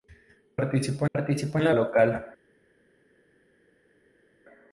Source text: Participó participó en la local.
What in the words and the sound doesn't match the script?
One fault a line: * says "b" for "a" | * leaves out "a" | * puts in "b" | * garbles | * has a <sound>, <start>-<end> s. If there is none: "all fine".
all fine